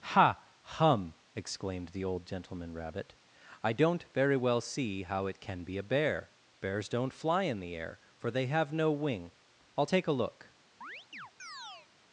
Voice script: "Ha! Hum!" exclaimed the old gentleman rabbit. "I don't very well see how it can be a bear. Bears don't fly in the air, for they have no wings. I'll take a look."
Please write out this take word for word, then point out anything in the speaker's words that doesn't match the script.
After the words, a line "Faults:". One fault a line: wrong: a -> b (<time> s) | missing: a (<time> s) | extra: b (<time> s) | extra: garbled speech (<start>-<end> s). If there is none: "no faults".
"Ha! Hum!" exclaimed the old gentleman rabbit. "I don't very well see how it can be a bear. Bears don't fly in the air, for they have no wing. I'll take a look."
Faults:
wrong: wings -> wing (8.9 s)